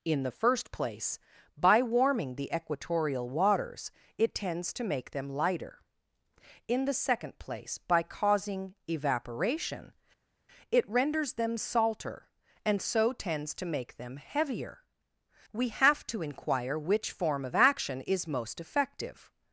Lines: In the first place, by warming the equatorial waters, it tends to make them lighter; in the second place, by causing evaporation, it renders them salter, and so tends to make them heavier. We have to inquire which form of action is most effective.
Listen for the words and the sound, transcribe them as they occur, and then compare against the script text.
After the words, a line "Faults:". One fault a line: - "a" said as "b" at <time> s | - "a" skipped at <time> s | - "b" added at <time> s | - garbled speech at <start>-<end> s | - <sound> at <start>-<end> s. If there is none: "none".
In the first place, by warming the equatorial waters, it tends to make them lighter; in the second place, by causing evaporation, it renders them salter, and so tends to make them heavier. We have to inquire which form of action is most effective.
Faults:
none